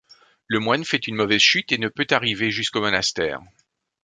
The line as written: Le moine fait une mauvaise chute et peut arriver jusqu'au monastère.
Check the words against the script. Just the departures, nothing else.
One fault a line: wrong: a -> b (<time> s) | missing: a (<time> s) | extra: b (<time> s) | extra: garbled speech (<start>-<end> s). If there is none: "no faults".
extra: ne (1.8 s)